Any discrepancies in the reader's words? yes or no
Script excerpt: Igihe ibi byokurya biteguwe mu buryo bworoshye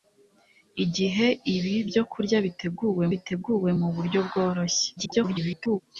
yes